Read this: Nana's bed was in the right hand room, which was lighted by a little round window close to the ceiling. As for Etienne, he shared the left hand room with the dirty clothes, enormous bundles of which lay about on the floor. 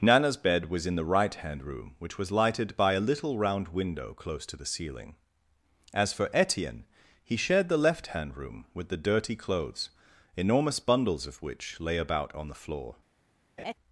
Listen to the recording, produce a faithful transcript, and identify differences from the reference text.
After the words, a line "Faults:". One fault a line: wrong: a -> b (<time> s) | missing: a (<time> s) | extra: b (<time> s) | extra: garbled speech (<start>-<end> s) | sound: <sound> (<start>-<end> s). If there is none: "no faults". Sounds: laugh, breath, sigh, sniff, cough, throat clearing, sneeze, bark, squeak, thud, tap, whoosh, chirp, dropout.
Nana's bed was in the right hand room, which was lighted by a little round window close to the ceiling. As for Etienne, he shared the left hand room with the dirty clothes, enormous bundles of which lay about on the floor.
Faults:
sound: laugh (13.6-13.7 s)